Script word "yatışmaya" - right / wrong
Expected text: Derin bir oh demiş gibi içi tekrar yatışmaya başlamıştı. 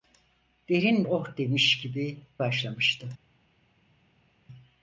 wrong